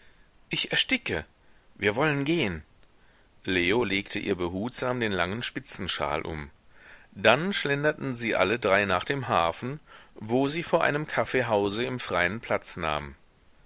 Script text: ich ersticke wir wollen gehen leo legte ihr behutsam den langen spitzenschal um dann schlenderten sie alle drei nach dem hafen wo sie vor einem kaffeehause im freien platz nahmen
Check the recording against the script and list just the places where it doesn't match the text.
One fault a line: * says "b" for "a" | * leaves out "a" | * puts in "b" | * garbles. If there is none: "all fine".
all fine